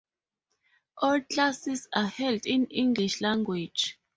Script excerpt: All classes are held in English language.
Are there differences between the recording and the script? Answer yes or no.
no